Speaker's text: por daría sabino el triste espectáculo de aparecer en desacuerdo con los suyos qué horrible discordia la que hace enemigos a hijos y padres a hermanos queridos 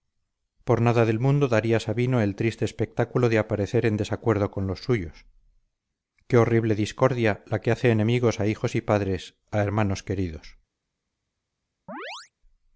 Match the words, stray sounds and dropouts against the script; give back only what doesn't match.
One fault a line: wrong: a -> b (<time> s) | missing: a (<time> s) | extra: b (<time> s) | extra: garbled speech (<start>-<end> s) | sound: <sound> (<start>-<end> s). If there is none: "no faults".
extra: nada del mundo (0.8 s)
sound: chirp (11.9-12.3 s)